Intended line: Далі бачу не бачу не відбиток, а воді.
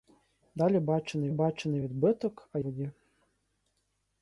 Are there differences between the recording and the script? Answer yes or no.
no